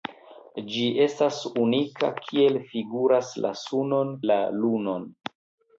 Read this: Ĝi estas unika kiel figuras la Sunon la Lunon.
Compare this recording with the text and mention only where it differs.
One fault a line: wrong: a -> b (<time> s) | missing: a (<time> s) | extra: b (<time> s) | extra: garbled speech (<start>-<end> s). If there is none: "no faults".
no faults